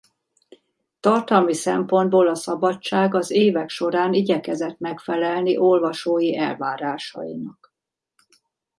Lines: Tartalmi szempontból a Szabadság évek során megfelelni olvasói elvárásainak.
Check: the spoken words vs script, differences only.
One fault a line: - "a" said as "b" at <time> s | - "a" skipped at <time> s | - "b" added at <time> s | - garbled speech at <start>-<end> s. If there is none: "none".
- "az" added at 3.1 s
- "igyekezett" added at 4.1 s